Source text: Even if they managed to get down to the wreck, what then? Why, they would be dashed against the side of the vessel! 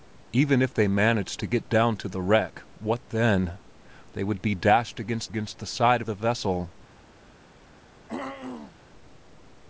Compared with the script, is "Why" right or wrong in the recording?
wrong